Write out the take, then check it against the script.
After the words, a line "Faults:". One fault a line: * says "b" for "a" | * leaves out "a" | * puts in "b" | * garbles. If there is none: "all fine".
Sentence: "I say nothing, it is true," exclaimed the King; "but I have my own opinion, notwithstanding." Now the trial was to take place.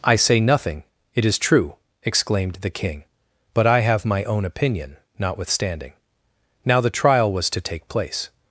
"I say nothing, it is true," exclaimed the King; "but I have my own opinion, notwithstanding." Now the trial was to take place.
Faults:
all fine